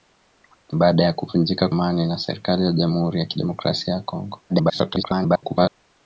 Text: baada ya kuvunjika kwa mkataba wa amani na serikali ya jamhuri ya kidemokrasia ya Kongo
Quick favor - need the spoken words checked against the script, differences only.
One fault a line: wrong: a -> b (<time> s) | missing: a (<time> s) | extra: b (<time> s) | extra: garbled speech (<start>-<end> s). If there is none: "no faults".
missing: kwa mkataba wa (1.7 s)
extra: garbled speech (4.5-5.7 s)